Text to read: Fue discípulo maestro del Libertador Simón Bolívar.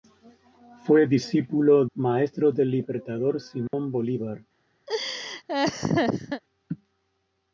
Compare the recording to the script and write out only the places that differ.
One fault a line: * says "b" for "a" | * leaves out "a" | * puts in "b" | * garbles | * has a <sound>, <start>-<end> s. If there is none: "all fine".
* has a dropout, 3.7-3.7 s
* has a laugh, 4.9-6.4 s